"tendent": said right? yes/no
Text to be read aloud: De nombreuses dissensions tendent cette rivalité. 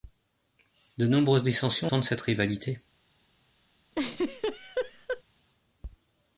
yes